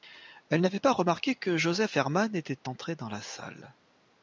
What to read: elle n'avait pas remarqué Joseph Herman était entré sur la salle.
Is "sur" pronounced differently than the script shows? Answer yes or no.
yes